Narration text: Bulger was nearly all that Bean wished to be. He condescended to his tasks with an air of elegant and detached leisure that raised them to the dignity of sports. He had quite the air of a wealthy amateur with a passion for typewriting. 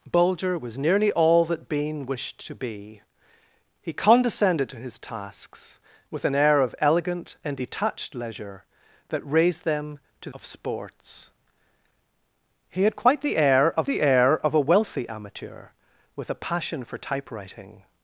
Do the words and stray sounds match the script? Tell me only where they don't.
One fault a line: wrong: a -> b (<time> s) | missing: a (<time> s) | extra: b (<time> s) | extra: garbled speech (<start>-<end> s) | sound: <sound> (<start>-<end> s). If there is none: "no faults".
missing: the dignity (10.3 s)
extra: the air of (13.8 s)